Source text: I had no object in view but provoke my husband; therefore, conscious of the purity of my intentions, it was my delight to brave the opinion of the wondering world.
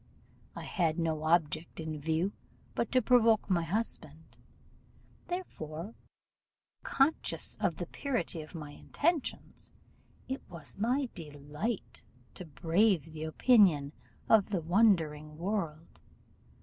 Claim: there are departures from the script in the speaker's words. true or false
true